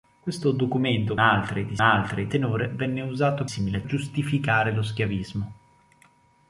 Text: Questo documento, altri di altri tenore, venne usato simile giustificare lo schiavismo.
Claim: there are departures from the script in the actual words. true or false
false